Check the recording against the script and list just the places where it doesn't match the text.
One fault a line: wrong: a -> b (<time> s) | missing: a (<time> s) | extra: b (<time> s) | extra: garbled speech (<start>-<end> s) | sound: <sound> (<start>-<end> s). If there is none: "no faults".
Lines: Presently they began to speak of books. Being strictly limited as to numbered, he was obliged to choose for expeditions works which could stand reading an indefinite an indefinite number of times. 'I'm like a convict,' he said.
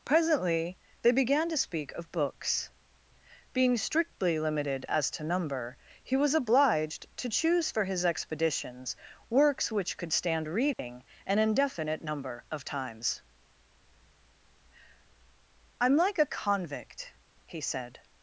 wrong: numbered -> number (5.2 s)
extra: his (7.8 s)
sound: dropout (10.7-10.8 s)
missing: an indefinite (12.0 s)